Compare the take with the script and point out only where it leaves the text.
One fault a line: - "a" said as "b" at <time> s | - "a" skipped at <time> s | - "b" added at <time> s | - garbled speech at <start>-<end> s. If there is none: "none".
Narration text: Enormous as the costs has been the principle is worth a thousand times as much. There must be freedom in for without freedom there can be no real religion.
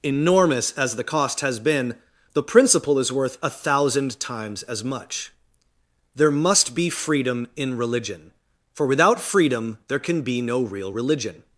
- "costs" said as "cost" at 1.0 s
- "religion" added at 7.8 s